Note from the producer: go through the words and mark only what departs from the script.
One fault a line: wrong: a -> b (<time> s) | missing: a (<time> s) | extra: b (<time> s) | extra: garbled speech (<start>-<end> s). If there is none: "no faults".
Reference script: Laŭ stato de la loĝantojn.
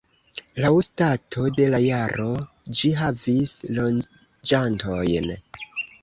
extra: jaro ĝi havis (1.8 s)